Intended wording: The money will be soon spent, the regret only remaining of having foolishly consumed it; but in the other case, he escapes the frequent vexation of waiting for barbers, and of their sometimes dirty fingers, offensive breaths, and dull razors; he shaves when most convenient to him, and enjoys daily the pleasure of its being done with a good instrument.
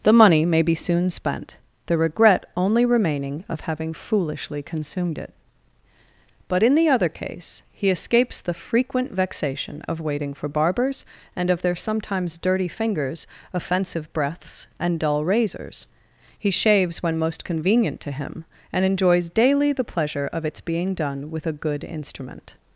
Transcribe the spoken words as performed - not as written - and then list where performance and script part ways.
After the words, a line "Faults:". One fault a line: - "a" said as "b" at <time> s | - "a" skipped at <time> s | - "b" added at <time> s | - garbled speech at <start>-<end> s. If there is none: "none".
The money may be soon spent, the regret only remaining of having foolishly consumed it; but in the other case, he escapes the frequent vexation of waiting for barbers, and of their sometimes dirty fingers, offensive breaths, and dull razors; he shaves when most convenient to him, and enjoys daily the pleasure of its being done with a good instrument.
Faults:
- "will" said as "may" at 0.5 s